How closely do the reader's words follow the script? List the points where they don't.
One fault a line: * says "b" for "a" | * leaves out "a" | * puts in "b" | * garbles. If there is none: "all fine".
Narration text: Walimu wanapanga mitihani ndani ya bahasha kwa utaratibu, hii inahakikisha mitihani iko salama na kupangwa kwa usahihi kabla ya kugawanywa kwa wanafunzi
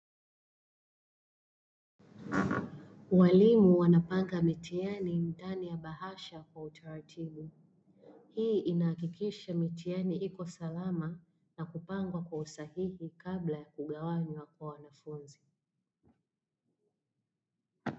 all fine